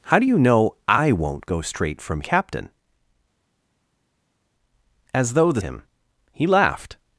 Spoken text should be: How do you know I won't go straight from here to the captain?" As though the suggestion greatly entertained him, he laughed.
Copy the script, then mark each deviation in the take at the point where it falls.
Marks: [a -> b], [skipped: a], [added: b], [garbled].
How do you know I won't go straight from [skipped: here to the] captain?" As though the [skipped: suggestion greatly entertained] him, he laughed.